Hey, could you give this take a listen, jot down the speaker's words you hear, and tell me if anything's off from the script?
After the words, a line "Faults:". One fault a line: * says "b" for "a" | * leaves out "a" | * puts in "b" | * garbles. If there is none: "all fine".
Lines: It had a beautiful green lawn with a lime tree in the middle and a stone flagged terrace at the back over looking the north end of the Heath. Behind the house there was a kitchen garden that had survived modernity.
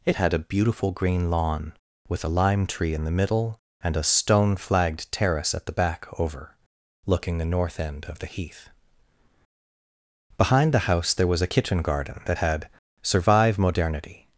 It had a beautiful green lawn with a lime tree in the middle and a stone flagged terrace at the back over looking the north end of the Heath. Behind the house there was a kitchen garden that had survive modernity.
Faults:
* says "survive" for "survived"